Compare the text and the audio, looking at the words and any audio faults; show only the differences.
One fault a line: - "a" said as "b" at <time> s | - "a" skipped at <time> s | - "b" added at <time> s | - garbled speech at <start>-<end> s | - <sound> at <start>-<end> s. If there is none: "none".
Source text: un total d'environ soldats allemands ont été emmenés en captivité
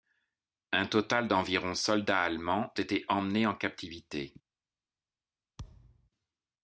- "ont" skipped at 2.7 s
- thud at 5.6-6.1 s